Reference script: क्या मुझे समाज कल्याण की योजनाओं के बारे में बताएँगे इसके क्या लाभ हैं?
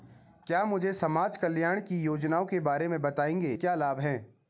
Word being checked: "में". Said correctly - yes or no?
yes